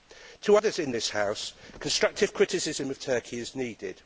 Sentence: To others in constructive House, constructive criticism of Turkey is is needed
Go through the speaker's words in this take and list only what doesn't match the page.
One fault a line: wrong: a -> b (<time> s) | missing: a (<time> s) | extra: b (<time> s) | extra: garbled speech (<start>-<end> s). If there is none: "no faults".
wrong: constructive -> this (0.9 s)
missing: is (3.6 s)